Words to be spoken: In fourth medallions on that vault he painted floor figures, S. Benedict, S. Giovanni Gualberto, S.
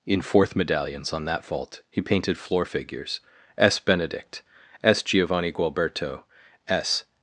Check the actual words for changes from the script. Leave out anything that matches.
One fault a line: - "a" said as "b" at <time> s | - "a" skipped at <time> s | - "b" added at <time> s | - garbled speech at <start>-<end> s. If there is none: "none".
none